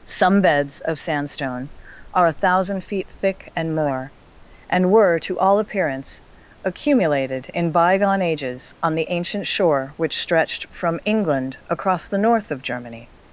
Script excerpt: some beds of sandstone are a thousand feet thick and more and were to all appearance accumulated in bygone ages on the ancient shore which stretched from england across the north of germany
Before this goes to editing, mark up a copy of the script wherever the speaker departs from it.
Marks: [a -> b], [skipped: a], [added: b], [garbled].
some beds of sandstone are a thousand feet thick and more and were to all appearance accumulated in bygone ages on the ancient shore which stretched from england across the north of germany